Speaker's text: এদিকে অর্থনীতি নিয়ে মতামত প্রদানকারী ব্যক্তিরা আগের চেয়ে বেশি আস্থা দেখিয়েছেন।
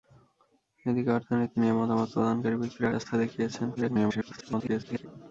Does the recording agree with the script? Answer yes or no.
no